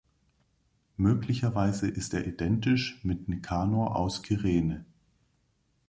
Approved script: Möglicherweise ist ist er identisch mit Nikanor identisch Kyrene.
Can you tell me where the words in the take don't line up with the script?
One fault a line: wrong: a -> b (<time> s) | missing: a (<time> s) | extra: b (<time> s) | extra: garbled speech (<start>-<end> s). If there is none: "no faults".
missing: ist (2.1 s)
wrong: identisch -> aus (4.0 s)